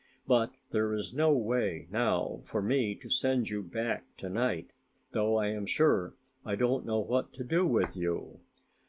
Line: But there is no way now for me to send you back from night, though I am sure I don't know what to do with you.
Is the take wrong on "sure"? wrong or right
right